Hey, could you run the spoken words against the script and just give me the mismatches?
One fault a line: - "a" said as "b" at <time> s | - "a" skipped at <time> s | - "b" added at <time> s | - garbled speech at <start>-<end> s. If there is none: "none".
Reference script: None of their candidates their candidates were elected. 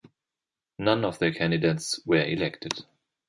- "their candidates" skipped at 2.0 s